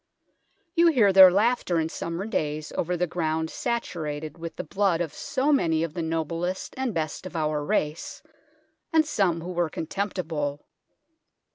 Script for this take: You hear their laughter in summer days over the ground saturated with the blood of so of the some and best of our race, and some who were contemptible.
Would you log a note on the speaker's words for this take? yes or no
yes